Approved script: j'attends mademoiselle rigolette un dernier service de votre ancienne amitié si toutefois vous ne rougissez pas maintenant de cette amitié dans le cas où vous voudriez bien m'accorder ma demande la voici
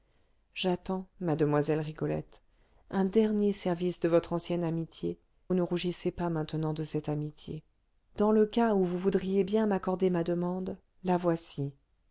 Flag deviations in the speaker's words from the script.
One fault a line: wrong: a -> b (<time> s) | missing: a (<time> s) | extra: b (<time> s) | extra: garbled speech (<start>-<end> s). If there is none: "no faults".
missing: si toutefois vous (5.2 s)